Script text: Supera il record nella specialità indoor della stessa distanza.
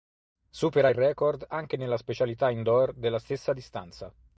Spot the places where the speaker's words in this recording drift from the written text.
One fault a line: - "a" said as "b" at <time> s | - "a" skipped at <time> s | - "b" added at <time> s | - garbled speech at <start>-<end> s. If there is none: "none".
- "anche" added at 1.5 s